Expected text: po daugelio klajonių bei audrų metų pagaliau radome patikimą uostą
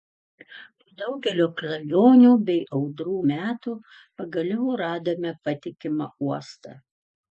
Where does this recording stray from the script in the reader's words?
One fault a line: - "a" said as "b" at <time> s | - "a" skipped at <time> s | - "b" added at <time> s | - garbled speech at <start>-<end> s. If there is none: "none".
none